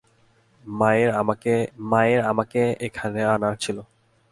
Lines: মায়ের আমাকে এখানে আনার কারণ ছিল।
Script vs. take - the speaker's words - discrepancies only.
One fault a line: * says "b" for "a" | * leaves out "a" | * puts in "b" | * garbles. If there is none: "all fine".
* puts in "মায়ের আমাকে"
* leaves out "কারণ"